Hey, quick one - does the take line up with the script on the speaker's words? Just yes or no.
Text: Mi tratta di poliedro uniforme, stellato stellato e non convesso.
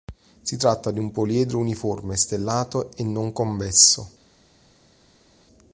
no